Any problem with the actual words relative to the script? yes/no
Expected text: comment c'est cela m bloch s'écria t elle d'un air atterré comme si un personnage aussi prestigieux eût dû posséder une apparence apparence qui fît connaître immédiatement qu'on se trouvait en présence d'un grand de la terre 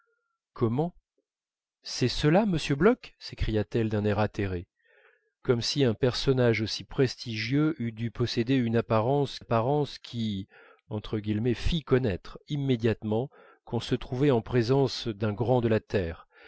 no